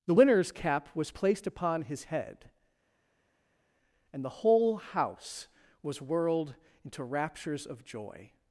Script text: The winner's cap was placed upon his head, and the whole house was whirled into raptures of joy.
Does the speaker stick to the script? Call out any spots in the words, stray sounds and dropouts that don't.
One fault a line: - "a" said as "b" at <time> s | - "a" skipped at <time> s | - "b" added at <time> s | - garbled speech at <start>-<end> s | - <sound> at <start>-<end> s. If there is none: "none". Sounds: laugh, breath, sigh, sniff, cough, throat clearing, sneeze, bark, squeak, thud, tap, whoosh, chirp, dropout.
none